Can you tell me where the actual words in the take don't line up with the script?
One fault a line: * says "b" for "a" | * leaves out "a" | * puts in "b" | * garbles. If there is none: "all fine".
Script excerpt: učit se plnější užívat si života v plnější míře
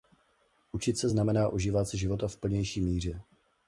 * says "znamená" for "plnější"